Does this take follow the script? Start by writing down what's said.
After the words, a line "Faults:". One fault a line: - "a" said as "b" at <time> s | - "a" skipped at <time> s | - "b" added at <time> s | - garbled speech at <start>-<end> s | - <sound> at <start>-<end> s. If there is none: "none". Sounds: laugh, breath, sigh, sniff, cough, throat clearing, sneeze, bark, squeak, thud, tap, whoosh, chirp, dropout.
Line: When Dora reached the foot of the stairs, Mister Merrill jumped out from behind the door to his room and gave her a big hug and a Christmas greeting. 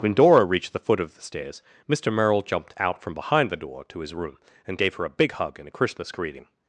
When Dora reached the foot of the stairs, Mister Merrill jumped out from behind the door to his room and gave her a big hug and a Christmas greeting.
Faults:
none